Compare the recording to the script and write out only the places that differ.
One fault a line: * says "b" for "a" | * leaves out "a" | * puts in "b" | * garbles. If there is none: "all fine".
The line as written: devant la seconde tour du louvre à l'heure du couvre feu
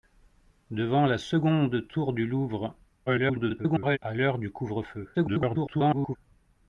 * garbles
* garbles